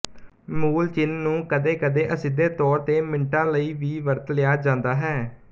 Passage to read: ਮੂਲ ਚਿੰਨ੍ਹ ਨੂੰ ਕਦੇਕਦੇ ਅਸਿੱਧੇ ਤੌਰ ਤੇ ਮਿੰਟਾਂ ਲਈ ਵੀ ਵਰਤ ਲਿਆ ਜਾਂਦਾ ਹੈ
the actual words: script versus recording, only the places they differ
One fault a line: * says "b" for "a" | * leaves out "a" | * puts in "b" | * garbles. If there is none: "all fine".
all fine